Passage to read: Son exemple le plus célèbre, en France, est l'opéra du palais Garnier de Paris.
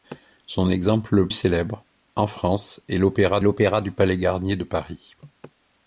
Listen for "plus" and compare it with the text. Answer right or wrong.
wrong